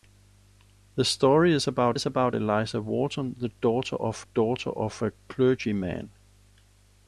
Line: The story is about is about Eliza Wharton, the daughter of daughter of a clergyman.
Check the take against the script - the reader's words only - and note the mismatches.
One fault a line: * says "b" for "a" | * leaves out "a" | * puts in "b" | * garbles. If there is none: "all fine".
all fine